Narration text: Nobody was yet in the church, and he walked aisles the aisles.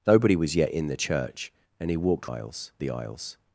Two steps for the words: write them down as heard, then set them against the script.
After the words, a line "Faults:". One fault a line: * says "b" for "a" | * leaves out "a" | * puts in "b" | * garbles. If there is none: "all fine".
Nobody was yet in the church, and he walked aisles the aisles.
Faults:
all fine